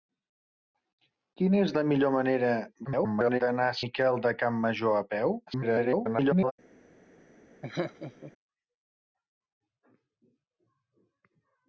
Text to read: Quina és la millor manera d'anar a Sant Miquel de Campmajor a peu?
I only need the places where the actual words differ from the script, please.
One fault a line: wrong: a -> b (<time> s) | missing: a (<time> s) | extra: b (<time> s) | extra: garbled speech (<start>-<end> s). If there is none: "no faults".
extra: garbled speech (2.9-3.4 s)
missing: Sant (3.8 s)
extra: garbled speech (5.5-6.5 s)